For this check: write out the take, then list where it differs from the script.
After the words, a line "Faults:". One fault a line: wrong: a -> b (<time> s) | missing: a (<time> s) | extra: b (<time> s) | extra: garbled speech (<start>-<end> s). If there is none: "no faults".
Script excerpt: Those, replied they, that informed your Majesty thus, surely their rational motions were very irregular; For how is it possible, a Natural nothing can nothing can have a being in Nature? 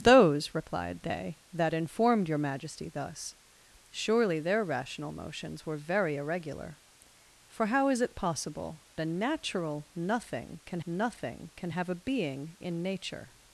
Those, replied they, that informed your Majesty thus, surely their rational motions were very irregular; For how is it possible, a Natural nothing can nothing can have a being in Nature?
Faults:
no faults